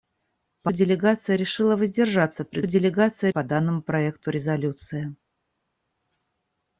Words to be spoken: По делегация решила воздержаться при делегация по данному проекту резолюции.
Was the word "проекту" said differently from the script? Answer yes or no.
no